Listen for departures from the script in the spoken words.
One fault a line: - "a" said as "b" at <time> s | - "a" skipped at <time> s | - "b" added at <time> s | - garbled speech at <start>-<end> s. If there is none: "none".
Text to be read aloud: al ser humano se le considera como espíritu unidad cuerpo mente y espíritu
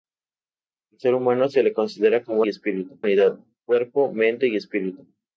none